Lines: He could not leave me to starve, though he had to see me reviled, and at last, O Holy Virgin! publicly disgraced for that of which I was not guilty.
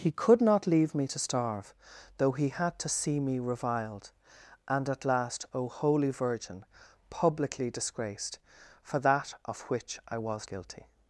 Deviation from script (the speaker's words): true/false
true